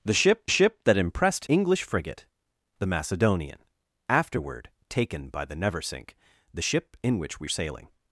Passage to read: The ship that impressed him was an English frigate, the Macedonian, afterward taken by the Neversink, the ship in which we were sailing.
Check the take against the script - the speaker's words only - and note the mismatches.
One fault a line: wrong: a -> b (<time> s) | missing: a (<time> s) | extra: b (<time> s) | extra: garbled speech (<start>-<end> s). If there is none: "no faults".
extra: ship (0.5 s)
missing: him was an (1.4 s)
missing: were (7.5 s)